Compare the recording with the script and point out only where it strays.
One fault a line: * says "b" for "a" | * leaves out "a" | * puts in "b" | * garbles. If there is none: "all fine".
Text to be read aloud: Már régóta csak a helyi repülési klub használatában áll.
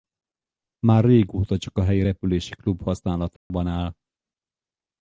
all fine